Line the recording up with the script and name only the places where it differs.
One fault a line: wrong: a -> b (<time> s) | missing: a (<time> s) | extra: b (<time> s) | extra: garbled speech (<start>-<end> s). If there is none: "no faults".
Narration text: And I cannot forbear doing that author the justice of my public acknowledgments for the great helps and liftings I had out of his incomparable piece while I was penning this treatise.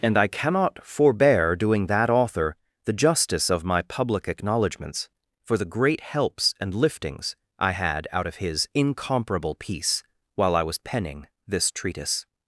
no faults